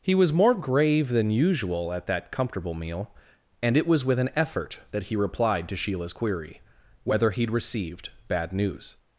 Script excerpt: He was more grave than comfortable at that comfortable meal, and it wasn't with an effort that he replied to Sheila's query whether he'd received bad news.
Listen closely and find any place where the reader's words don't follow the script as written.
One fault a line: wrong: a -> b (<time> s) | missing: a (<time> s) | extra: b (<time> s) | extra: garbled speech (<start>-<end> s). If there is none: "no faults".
wrong: comfortable -> usual (1.3 s)
wrong: wasn't -> was (3.9 s)